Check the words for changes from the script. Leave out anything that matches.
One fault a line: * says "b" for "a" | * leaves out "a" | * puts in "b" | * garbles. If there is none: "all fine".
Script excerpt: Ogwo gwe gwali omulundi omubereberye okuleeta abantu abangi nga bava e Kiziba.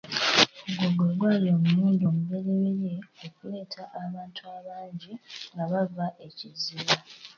all fine